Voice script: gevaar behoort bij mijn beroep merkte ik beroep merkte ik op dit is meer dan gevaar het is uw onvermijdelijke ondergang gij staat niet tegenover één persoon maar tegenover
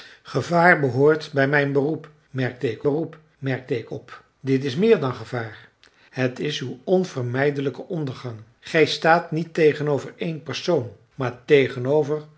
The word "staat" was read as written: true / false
true